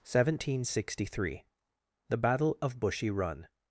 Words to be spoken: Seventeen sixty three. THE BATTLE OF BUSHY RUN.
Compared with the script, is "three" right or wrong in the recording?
right